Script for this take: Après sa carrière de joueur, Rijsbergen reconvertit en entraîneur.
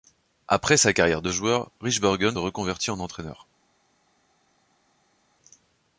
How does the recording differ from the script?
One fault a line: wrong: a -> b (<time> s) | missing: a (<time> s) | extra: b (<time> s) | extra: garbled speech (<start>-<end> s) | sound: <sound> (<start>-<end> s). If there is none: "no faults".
no faults